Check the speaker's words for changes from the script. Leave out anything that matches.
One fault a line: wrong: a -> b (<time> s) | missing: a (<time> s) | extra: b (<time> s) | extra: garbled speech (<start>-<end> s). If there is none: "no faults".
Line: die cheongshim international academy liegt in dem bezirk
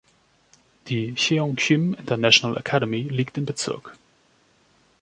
missing: dem (3.4 s)